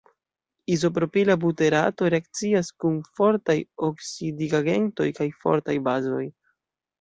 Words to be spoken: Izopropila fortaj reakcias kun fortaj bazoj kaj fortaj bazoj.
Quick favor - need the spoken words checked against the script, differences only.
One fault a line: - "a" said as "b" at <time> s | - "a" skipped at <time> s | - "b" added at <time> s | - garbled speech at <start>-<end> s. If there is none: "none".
- "fortaj" said as "buterato" at 1.4 s
- "bazoj" said as "oksidigagentoj" at 3.9 s